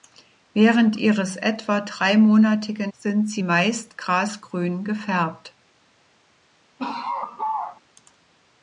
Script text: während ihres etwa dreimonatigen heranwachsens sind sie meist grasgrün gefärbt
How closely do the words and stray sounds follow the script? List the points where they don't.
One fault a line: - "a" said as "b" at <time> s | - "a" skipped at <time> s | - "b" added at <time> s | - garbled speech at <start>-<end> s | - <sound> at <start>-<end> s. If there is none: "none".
- "heranwachsens" skipped at 2.9 s
- laugh at 6.8-7.8 s